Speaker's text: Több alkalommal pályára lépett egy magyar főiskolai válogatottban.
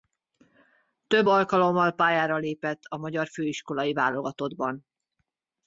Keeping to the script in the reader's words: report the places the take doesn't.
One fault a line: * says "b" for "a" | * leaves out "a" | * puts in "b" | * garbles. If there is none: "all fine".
* says "a" for "egy"